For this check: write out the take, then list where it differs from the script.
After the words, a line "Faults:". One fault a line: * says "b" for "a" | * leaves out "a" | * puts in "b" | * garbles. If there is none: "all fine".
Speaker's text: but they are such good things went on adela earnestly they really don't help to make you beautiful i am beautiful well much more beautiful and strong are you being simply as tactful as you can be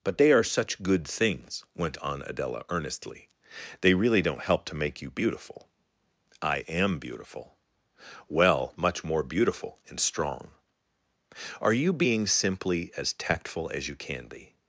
but they are such good things went on adela earnestly they really don't help to make you beautiful i am beautiful well much more beautiful and strong are you being simply as tactful as you can be
Faults:
all fine